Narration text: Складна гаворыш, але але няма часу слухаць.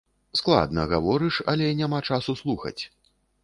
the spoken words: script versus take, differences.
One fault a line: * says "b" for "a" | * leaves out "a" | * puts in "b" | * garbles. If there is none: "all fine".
* leaves out "але"